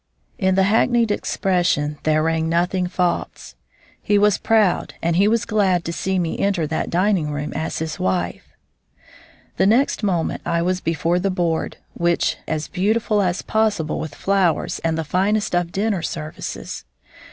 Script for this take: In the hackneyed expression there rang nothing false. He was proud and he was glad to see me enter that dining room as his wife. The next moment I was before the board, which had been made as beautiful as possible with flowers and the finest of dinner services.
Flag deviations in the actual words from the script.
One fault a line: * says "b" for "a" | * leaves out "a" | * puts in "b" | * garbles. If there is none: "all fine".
* leaves out "had been made"